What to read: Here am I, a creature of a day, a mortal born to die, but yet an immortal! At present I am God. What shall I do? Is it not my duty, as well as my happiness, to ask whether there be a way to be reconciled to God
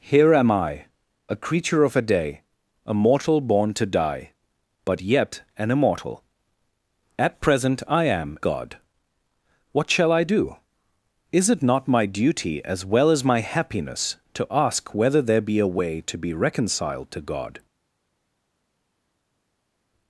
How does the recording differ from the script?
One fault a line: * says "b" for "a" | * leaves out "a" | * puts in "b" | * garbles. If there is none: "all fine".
all fine